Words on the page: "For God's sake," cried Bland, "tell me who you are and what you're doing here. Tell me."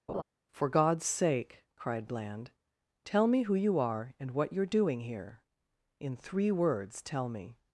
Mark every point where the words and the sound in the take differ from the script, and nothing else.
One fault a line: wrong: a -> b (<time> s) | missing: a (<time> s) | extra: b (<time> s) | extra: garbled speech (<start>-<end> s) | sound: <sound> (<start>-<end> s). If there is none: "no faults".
sound: laugh (0.1-0.2 s)
extra: In three words (6.0 s)